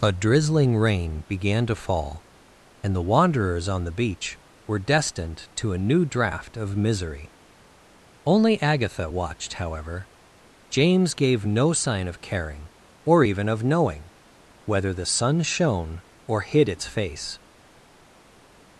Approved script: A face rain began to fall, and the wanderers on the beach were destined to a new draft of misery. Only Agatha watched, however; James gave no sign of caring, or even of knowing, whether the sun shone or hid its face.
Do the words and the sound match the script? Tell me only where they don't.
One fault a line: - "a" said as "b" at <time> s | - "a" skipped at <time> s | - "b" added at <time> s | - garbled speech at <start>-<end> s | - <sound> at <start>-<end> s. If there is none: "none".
- "face" said as "drizzling" at 0.1 s